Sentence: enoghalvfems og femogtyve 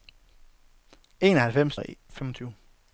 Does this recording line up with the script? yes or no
yes